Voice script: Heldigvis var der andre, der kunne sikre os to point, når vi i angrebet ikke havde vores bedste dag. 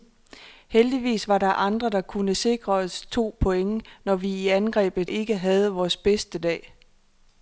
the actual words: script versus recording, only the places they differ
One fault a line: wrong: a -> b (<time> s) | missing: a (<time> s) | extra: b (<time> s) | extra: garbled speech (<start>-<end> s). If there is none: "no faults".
no faults